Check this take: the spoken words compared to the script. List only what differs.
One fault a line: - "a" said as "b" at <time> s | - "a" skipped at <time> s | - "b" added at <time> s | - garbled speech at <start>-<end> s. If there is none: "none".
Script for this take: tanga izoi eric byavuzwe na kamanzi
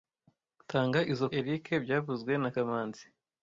none